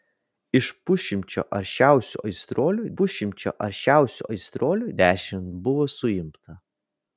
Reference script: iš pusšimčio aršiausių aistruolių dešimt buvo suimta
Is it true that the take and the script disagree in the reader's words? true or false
true